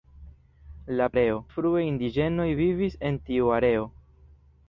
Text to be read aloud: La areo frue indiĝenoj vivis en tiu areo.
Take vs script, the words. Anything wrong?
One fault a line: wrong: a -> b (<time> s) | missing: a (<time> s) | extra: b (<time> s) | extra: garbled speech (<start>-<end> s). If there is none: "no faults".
no faults